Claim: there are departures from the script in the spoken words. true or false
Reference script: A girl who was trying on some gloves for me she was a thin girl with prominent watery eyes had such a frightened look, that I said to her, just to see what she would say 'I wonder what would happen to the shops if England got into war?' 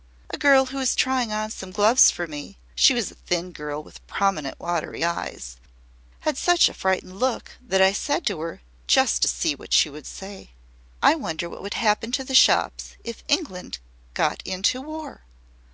false